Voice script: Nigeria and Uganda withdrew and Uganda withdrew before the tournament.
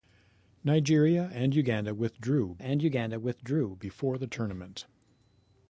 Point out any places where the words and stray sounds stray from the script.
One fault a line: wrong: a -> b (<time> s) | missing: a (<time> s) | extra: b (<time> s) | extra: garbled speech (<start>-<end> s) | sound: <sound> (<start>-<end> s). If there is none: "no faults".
no faults